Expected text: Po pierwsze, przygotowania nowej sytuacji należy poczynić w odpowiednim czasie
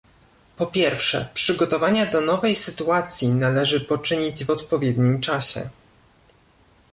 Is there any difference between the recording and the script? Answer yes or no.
yes